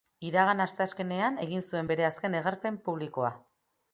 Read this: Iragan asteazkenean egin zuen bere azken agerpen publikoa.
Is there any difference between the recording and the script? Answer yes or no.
no